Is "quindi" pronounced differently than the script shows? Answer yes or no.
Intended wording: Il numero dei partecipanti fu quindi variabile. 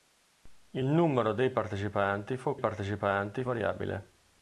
yes